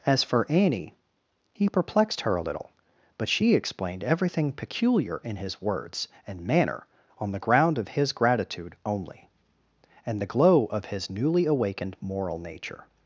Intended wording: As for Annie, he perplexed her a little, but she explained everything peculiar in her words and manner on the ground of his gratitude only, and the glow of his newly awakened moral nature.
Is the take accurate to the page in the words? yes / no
no